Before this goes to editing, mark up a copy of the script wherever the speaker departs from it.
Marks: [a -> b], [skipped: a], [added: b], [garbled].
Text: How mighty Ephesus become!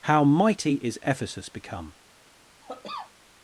How mighty [added: is] Ephesus become!